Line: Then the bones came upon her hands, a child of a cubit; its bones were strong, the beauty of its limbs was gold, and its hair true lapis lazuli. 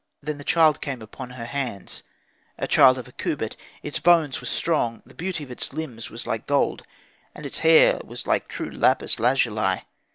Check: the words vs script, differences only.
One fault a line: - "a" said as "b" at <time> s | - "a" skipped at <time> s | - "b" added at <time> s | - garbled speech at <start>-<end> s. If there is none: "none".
- "bones" said as "child" at 0.4 s
- "like" added at 6.3 s
- "was like" added at 8.0 s